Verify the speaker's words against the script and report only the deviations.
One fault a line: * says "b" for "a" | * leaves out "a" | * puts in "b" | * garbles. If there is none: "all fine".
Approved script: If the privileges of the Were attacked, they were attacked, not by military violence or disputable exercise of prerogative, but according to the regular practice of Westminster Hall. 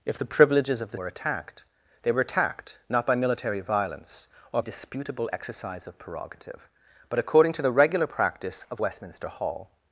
all fine